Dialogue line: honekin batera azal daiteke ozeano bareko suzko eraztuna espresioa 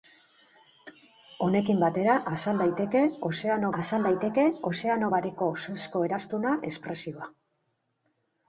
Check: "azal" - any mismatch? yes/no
no